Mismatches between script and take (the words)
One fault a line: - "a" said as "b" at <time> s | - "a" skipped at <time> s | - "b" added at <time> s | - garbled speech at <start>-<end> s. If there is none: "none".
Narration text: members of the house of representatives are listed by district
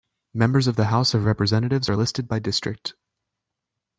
none